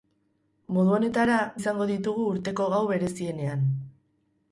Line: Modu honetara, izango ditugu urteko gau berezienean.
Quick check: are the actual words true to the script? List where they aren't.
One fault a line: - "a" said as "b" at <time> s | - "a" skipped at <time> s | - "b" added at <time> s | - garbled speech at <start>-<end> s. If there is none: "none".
none